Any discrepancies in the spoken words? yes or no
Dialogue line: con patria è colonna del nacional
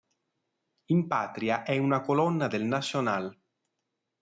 yes